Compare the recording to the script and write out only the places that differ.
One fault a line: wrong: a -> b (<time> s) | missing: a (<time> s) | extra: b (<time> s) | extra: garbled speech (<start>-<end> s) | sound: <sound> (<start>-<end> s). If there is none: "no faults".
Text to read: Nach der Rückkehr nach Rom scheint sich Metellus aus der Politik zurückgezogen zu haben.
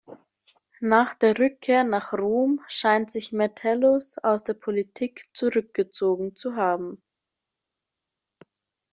no faults